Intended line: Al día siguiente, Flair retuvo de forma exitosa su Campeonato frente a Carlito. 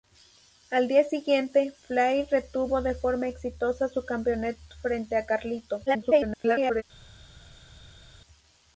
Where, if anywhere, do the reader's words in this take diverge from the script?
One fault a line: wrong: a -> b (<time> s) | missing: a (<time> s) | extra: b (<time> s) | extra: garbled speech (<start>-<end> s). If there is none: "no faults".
extra: garbled speech (5.9-6.8 s)